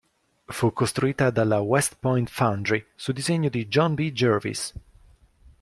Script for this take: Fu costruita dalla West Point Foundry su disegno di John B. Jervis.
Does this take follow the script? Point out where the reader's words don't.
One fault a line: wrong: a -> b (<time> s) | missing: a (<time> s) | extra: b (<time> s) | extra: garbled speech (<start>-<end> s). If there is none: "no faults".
no faults